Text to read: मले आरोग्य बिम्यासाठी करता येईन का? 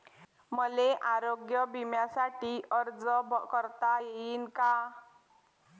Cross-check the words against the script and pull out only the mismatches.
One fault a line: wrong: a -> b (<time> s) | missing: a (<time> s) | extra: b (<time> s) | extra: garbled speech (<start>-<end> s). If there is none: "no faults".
extra: अर्ज (2.7 s)